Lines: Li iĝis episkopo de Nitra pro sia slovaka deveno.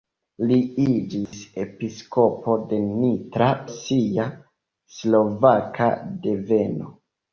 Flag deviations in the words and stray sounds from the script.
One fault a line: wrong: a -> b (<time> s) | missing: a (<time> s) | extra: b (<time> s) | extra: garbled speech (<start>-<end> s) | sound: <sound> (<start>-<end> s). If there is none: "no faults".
sound: dropout (1.3-1.3 s)
missing: pro (3.5 s)